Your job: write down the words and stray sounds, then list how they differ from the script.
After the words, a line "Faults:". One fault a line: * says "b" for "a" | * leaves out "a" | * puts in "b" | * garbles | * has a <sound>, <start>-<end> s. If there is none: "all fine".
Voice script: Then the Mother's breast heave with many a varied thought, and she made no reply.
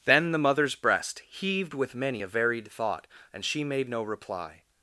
Then the Mother's breast heaved with many a varied thought, and she made no reply.
Faults:
* says "heaved" for "heave"